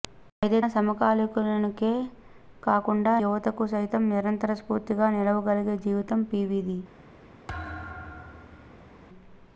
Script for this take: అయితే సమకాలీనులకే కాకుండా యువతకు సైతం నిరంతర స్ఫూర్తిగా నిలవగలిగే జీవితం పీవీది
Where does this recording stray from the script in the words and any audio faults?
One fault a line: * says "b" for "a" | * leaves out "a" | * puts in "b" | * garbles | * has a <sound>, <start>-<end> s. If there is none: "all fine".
* has a thud, 7.5-9.0 s